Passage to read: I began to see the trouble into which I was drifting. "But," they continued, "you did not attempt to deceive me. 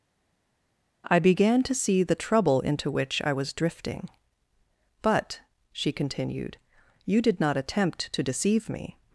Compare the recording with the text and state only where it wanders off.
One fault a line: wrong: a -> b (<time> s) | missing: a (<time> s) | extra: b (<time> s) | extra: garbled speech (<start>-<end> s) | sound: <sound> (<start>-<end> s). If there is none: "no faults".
wrong: they -> she (5.7 s)